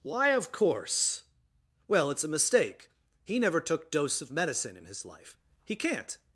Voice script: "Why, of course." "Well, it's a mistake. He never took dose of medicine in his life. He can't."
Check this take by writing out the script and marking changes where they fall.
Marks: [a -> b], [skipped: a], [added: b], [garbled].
"Why, of course." "Well, it's a mistake. He never took dose of medicine in his life. He can't."